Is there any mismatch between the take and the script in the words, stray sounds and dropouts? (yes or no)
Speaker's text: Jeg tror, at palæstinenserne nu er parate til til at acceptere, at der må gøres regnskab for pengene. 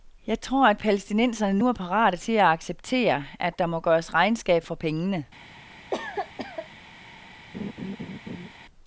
yes